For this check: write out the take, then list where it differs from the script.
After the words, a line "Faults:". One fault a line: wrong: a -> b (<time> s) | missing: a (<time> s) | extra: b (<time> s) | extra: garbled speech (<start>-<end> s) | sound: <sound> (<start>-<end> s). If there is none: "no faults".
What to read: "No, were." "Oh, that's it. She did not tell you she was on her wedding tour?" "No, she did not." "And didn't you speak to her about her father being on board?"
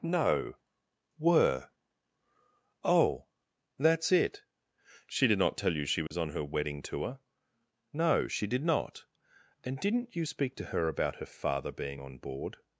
"No, were." "Oh, that's it. She did not tell you she was on her wedding tour?" "No, she did not." "And didn't you speak to her about her father being on board?"
Faults:
sound: dropout (6.1-6.1 s)